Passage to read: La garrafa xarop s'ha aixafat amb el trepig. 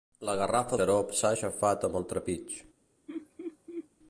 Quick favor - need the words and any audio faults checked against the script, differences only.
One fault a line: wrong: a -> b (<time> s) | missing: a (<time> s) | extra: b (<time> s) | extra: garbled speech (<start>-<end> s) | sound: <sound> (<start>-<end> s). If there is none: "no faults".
sound: laugh (3.1-3.9 s)